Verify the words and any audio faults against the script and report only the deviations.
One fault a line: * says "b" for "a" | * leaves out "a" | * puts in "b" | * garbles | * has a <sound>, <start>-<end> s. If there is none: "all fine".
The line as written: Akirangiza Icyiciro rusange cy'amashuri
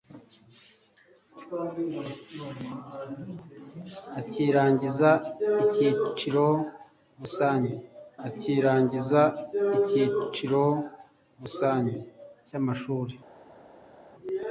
* puts in "akirangiza Icyiciro rusange"